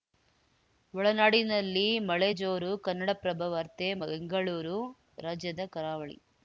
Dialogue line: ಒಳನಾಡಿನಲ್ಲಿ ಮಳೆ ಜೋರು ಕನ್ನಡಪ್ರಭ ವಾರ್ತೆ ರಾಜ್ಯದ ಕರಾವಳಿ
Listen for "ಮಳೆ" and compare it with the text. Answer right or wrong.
right